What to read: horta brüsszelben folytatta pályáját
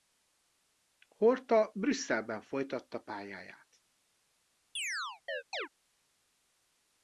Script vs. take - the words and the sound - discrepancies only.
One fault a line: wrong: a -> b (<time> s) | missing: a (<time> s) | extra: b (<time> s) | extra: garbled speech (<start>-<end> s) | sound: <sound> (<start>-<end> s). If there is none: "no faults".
sound: chirp (4.8-5.7 s)